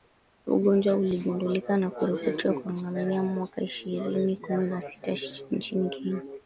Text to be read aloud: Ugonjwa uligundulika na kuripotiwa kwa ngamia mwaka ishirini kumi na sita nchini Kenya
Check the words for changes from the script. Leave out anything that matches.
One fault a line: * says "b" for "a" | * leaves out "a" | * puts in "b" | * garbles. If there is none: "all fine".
all fine